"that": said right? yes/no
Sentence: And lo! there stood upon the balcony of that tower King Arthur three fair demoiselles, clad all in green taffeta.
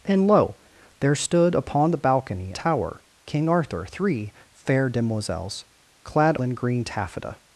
no